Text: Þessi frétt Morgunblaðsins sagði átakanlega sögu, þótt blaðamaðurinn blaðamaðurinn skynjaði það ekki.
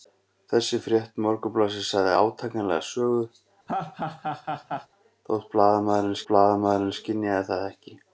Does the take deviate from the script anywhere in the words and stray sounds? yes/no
yes